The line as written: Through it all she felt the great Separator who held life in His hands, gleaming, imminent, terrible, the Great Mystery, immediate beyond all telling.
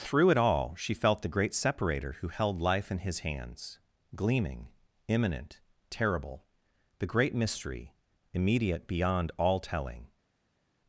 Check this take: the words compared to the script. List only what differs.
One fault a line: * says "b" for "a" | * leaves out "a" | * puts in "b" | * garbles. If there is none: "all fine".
all fine